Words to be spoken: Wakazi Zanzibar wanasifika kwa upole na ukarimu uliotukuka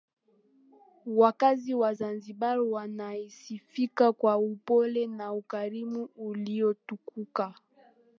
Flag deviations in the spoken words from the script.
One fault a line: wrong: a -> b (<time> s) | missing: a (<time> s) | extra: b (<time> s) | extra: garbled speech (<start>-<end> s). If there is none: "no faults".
extra: wa (1.7 s)